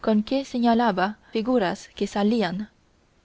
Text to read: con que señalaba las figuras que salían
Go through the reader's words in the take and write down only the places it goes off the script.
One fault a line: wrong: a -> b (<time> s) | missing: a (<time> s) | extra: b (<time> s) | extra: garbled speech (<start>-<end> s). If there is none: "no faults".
missing: las (1.2 s)